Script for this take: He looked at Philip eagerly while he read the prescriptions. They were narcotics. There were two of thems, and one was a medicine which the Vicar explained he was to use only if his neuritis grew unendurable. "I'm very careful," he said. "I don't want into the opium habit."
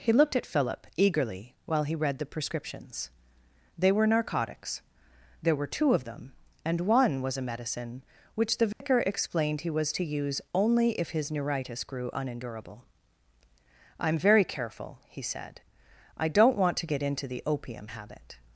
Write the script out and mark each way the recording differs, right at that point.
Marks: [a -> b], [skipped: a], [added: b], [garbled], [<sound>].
He looked at Philip eagerly while he read the prescriptions. They were narcotics. There were two of [thems, -> them] and one was a medicine which the Vicar [dropout] explained he was to use only if his neuritis grew unendurable. "I'm very careful," he said. "I don't want [added: to get] into the opium habit."